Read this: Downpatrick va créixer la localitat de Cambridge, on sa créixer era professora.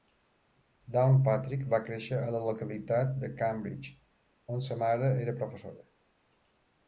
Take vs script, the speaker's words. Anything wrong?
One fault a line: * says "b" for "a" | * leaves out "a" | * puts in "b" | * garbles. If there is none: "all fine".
* puts in "a"
* says "mare" for "créixer"